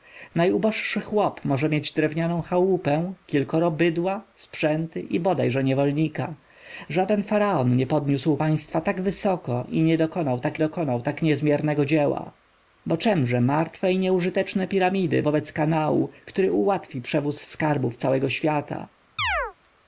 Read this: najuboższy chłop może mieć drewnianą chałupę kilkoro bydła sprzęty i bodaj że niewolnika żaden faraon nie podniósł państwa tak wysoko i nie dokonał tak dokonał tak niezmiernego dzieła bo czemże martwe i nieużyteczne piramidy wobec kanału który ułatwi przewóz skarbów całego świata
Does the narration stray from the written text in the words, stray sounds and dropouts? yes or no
yes